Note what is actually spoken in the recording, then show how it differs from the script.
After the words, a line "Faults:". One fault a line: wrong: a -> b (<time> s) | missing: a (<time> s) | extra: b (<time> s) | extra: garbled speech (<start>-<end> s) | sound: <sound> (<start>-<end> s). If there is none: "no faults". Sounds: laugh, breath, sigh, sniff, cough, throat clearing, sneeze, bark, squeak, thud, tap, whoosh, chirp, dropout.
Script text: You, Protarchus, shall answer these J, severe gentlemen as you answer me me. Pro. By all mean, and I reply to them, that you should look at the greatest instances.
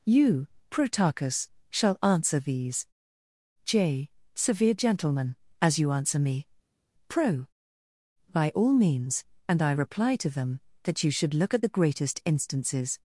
You, Protarchus, shall answer these J, severe gentlemen as you answer me. Pro. By all means, and I reply to them, that you should look at the greatest instances.
Faults:
missing: me (6.5 s)
wrong: mean -> means (8.7 s)